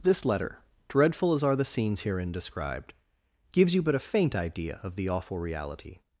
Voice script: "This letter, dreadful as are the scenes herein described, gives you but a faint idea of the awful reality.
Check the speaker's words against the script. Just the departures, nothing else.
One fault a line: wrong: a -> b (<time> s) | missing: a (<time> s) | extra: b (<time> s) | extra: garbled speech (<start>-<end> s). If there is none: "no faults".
no faults